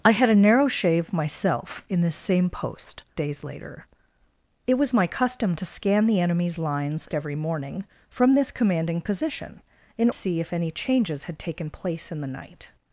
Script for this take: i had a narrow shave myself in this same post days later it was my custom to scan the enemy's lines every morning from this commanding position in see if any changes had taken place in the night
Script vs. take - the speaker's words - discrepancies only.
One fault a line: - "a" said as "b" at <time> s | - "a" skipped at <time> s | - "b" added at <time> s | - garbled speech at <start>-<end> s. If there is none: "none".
none